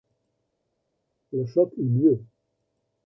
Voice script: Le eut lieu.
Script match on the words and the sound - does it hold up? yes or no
no